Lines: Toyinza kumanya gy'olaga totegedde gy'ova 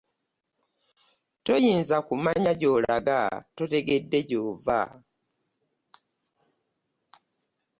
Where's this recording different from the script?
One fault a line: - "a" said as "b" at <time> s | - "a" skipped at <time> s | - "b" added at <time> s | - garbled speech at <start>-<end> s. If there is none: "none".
none